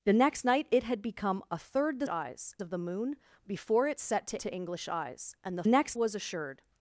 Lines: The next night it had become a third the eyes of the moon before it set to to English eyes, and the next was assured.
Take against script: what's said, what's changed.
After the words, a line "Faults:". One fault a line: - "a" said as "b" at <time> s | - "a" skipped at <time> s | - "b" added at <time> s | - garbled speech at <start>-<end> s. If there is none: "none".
The next night it had become a third the eyes of the moon before it set to to English eyes, and the next was assured.
Faults:
none